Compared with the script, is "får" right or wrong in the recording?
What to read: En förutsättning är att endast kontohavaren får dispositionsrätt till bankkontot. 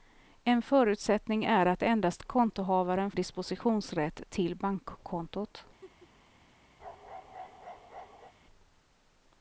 wrong